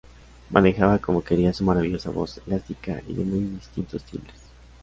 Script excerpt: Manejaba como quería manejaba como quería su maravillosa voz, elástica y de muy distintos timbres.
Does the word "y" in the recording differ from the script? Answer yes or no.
no